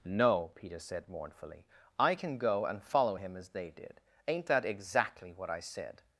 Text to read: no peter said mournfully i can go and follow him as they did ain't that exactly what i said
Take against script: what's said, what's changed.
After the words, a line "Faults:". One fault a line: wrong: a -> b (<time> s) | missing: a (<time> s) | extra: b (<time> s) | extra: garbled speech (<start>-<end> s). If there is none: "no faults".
no peter said mournfully i can go and follow him as they did ain't that exactly what i said
Faults:
no faults